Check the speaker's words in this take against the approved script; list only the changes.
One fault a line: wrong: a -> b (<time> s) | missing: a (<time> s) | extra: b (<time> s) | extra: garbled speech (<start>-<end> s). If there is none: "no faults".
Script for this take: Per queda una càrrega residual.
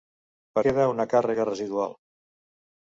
no faults